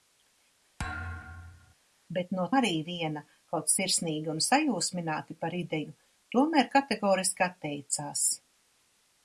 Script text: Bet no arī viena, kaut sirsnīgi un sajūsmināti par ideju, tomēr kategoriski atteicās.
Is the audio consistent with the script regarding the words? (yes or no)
yes